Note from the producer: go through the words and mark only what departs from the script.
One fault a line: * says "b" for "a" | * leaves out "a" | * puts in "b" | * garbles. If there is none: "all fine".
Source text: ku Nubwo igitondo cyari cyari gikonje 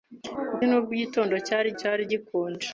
all fine